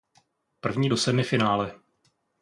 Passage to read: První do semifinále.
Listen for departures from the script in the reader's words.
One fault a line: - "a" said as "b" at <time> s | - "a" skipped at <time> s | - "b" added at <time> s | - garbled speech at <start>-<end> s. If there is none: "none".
none